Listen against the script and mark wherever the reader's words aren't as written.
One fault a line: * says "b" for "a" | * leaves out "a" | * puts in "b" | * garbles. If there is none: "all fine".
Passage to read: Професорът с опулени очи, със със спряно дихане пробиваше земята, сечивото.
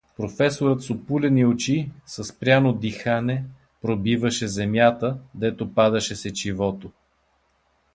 * leaves out "със"
* puts in "дето падаше"